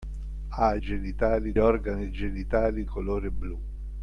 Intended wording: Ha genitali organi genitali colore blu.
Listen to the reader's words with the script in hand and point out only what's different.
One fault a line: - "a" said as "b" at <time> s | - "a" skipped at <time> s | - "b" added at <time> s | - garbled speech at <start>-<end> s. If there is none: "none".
none